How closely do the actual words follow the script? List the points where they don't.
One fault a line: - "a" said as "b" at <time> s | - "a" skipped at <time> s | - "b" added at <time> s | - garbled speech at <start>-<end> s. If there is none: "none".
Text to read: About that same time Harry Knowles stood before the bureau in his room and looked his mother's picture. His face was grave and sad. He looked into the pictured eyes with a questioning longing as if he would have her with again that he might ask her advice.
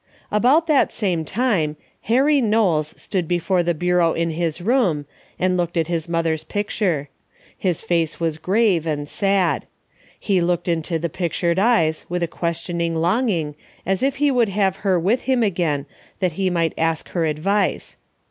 - "at" added at 5.8 s
- "him" added at 15.3 s